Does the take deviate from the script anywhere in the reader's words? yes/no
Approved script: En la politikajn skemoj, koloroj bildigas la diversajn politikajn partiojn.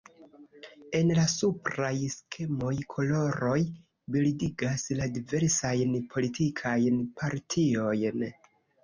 yes